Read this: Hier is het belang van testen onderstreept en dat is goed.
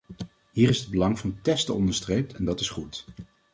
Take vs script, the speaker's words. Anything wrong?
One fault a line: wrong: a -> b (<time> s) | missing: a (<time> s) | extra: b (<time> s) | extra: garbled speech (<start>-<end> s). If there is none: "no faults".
no faults